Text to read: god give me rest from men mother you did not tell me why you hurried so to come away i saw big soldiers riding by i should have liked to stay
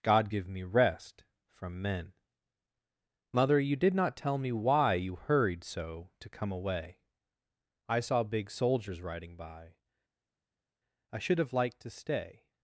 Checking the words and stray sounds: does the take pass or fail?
pass